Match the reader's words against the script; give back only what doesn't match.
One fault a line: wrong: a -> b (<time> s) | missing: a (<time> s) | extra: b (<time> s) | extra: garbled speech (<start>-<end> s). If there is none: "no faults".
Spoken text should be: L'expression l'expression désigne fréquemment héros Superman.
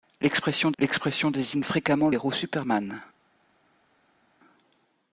no faults